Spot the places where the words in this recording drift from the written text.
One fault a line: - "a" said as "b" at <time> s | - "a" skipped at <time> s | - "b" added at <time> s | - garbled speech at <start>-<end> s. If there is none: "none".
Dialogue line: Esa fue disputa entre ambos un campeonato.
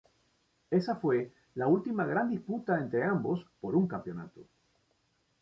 - "la última gran" added at 1.5 s
- "por" added at 3.6 s